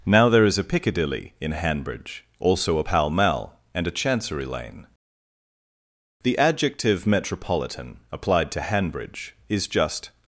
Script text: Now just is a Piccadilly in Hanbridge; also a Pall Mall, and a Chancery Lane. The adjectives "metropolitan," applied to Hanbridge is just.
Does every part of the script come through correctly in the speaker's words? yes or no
no